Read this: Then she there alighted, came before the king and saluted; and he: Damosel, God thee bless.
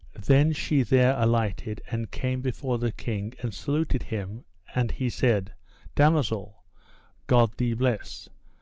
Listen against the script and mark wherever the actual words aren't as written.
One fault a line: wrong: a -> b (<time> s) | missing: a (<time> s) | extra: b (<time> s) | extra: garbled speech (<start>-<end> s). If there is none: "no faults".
extra: and (1.9 s)
extra: him (4.0 s)
extra: said (5.1 s)